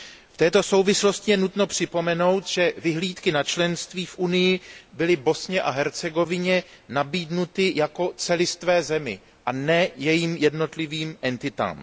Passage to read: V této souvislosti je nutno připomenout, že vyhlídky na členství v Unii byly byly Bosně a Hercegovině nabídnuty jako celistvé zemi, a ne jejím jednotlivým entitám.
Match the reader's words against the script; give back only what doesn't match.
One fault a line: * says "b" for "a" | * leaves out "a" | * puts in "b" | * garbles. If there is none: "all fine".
* leaves out "byly"